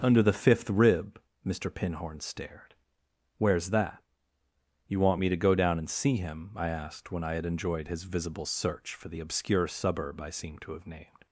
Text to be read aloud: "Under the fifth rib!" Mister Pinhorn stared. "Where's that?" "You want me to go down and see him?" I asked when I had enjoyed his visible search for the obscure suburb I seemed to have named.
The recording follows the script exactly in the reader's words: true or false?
true